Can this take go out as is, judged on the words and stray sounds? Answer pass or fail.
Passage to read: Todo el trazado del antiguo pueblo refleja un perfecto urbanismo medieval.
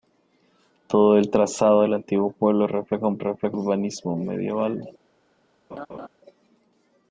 fail